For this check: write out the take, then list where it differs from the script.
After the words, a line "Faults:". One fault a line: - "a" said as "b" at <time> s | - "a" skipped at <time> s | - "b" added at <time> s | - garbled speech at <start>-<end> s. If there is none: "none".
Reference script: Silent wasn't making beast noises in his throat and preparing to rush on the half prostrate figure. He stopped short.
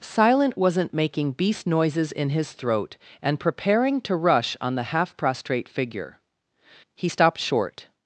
Silent wasn't making beast noises in his throat and preparing to rush on the half prostrate figure. He stopped short.
Faults:
none